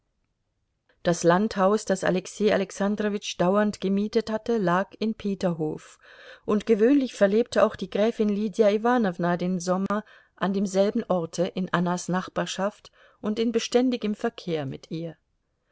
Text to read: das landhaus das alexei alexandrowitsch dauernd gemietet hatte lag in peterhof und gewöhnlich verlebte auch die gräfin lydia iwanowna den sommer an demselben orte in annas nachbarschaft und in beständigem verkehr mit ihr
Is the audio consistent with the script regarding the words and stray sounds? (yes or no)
no